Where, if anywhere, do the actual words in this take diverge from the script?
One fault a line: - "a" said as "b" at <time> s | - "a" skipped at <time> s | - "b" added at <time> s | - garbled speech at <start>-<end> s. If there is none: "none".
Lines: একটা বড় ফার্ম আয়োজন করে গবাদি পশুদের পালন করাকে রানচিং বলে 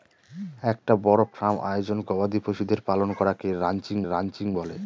- "করে" skipped at 2.0 s
- "রানচিং" added at 4.0 s